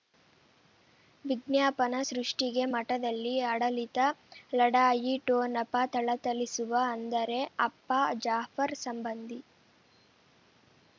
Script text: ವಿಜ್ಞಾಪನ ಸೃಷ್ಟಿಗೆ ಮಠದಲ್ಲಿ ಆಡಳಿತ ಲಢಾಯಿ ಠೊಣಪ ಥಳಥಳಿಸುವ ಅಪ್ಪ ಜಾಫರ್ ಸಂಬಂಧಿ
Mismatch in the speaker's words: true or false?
true